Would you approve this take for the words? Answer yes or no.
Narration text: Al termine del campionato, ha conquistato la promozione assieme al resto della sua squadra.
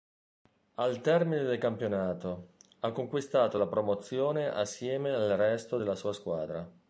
yes